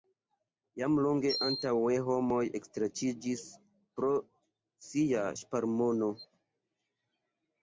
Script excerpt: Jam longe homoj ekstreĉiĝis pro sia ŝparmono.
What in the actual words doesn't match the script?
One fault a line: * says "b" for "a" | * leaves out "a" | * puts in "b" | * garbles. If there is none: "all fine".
* puts in "antaŭe"